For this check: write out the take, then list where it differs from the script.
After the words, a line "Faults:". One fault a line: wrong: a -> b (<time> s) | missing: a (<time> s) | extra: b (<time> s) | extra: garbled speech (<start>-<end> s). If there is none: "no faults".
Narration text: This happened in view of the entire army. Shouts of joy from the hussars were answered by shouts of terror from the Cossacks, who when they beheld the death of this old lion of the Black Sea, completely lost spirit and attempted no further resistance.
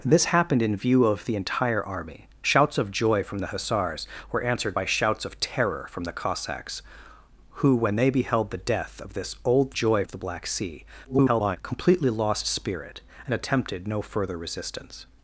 This happened in view of the entire army. Shouts of joy from the hussars were answered by shouts of terror from the Cossacks, who when they beheld the death of this old joy of the Black Sea, [garbled] completely lost spirit and attempted no further resistance.
Faults:
wrong: lion -> joy (9.7 s)
extra: garbled speech (11.0-11.6 s)